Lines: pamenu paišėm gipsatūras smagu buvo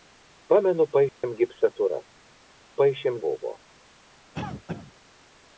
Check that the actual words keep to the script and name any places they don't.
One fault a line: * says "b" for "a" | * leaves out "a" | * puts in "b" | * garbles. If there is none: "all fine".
* says "paišėm" for "smagu"